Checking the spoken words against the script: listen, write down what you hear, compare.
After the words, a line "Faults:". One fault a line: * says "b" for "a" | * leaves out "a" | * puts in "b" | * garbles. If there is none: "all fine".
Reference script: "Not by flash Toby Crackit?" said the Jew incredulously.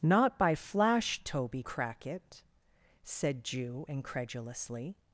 "Not by flash Toby Crackit?" said Jew incredulously.
Faults:
* leaves out "the"